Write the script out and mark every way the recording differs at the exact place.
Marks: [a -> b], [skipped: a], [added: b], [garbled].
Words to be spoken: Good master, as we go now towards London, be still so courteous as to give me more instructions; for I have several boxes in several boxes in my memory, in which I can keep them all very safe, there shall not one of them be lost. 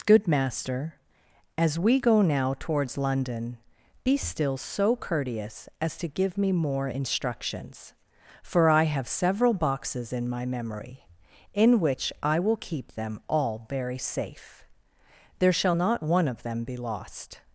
Good master, as we go now towards London, be still so courteous as to give me more instructions; for I have several boxes in [skipped: several boxes in] my memory, in which I [can -> will] keep them all very safe, there shall not one of them be lost.